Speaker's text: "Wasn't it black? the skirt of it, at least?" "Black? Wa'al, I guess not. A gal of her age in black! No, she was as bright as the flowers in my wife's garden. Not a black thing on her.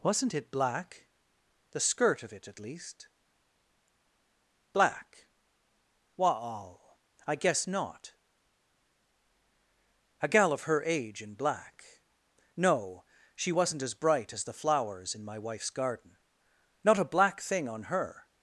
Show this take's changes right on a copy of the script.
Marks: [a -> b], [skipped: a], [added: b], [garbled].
"Wasn't it black? the skirt of it, at least?" "Black? Wa'al, I guess not. A gal of her age in black! No, she [was -> wasn't] as bright as the flowers in my wife's garden. Not a black thing on her.